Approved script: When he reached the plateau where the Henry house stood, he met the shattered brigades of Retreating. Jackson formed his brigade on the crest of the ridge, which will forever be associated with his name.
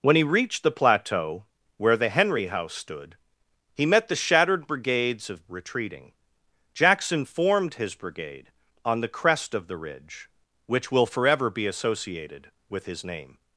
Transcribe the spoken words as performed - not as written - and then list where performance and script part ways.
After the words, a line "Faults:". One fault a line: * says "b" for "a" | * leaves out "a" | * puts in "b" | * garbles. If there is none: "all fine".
When he reached the plateau where the Henry house stood, he met the shattered brigades of Retreating. Jackson formed his brigade on the crest of the ridge, which will forever be associated with his name.
Faults:
all fine